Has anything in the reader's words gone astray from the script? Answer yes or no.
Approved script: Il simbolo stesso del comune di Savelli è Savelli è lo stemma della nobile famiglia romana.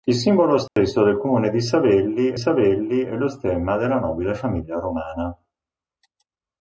no